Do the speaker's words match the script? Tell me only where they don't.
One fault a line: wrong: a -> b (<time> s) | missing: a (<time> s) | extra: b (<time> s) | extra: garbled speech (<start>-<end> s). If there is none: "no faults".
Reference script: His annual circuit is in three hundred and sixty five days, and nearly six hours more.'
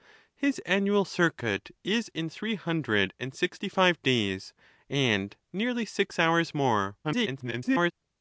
extra: garbled speech (7.0-7.9 s)